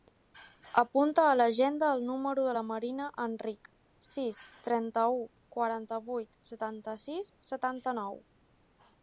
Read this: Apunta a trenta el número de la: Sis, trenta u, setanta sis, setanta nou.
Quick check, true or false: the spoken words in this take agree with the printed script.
false